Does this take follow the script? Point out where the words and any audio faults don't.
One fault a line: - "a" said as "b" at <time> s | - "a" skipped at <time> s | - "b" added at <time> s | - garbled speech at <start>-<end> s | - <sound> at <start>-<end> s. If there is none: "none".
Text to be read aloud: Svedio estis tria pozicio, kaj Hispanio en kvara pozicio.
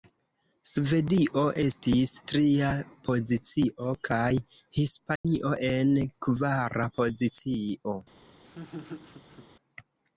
- dropout at 5.2-5.2 s
- laugh at 8.4-9.5 s